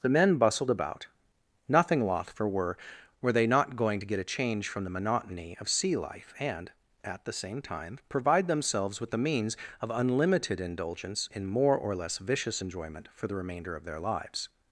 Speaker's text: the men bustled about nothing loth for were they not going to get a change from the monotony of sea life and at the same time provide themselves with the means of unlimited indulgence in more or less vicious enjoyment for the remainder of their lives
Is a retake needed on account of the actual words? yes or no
yes